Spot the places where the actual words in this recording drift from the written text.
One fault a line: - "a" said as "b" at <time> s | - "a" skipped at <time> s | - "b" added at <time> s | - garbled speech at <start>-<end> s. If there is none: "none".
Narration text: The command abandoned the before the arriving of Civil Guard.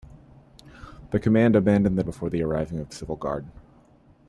none